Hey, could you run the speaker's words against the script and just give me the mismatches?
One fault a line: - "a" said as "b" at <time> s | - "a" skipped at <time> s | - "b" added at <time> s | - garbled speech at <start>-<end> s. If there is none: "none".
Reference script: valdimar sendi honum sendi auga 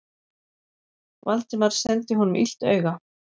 - "sendi" said as "illt" at 2.4 s